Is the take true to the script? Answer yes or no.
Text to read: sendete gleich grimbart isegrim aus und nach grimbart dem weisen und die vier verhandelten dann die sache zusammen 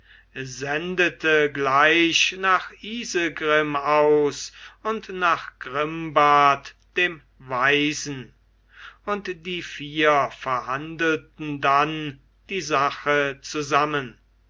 no